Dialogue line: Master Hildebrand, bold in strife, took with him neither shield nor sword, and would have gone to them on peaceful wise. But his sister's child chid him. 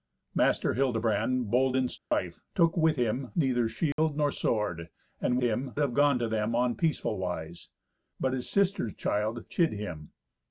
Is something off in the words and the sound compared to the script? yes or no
yes